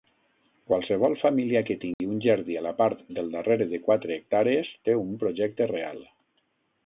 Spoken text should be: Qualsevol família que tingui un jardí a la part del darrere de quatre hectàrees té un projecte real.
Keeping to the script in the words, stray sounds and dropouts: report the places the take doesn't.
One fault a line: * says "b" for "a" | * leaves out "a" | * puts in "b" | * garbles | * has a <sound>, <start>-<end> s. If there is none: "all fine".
* has a dropout, 1.9-2.0 s